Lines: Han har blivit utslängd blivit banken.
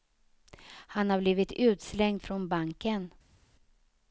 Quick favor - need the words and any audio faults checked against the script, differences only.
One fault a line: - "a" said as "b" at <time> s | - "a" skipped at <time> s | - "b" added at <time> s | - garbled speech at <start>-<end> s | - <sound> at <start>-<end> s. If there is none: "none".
- "blivit" said as "från" at 2.2 s